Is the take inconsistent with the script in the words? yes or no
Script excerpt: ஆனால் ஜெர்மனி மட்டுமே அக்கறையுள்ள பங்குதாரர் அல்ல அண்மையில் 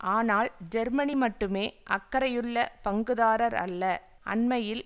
no